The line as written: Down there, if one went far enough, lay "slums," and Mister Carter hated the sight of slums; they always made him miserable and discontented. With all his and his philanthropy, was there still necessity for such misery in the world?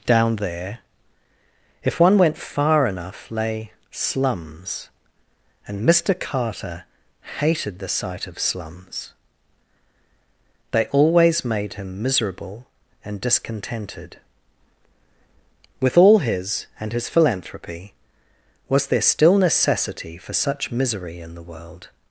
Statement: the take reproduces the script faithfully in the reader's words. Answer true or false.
true